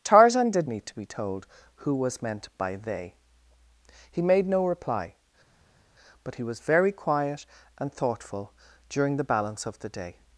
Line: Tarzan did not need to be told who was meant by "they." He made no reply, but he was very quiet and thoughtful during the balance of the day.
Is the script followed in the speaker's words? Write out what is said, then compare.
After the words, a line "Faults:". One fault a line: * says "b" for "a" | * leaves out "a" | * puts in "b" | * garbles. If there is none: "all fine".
Tarzan did need to be told who was meant by "they." He made no reply, but he was very quiet and thoughtful during the balance of the day.
Faults:
* leaves out "not"